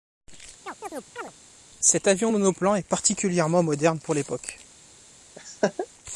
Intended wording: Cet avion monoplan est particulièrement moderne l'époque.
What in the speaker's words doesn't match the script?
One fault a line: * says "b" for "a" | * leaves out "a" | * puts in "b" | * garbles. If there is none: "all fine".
* puts in "pour"